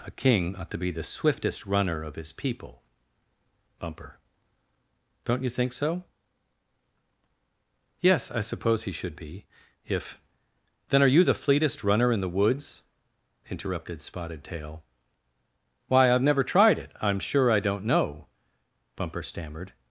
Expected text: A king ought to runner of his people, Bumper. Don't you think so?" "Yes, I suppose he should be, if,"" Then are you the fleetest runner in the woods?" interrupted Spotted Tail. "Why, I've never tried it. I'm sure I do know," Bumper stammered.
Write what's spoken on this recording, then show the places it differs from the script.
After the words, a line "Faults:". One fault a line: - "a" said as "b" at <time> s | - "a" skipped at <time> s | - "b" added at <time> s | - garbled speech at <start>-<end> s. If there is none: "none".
A king ought to be the swiftest runner of his people, Bumper. Don't you think so?" "Yes, I suppose he should be, if,"" Then are you the fleetest runner in the woods?" interrupted Spotted Tail. "Why, I've never tried it. I'm sure I don't know," Bumper stammered.
Faults:
- "be the swiftest" added at 0.8 s
- "do" said as "don't" at 17.6 s